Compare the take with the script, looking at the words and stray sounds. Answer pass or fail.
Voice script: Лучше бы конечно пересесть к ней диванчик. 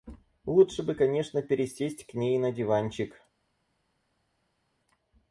fail